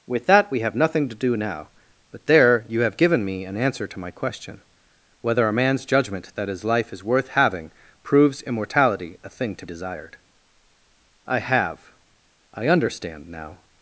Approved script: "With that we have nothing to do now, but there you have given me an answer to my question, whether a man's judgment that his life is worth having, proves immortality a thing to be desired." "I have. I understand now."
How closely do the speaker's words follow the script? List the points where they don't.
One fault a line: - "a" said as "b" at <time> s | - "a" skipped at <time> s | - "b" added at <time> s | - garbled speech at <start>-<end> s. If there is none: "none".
- "be" skipped at 9.7 s